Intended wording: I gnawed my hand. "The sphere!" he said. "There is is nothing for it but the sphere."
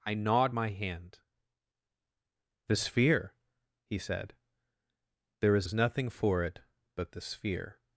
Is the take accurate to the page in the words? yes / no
yes